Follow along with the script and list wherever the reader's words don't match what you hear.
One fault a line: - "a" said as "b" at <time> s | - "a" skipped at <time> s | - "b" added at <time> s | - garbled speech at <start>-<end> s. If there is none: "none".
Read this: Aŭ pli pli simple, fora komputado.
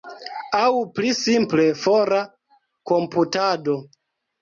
- "pli" skipped at 1.1 s